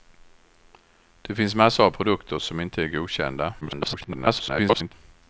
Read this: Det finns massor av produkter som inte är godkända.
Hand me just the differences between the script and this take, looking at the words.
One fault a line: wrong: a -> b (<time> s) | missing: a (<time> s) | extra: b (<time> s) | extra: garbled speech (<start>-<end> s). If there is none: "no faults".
extra: garbled speech (3.6-4.9 s)